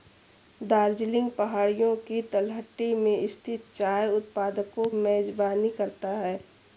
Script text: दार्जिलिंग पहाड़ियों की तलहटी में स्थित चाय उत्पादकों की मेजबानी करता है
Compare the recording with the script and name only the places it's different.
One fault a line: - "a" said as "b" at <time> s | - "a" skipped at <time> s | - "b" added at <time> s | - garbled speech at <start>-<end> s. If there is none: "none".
- "की" skipped at 4.8 s